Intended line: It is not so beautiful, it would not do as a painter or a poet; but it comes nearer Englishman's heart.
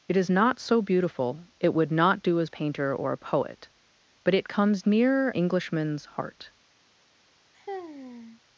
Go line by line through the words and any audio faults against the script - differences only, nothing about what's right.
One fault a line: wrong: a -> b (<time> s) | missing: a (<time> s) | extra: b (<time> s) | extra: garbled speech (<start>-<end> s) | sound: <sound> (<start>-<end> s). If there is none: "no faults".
sound: sigh (7.5-8.4 s)